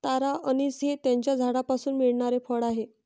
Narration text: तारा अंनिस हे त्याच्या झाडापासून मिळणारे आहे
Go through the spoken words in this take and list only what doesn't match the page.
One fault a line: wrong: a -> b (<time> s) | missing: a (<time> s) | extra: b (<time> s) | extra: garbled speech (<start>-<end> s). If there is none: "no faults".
extra: फळ (2.4 s)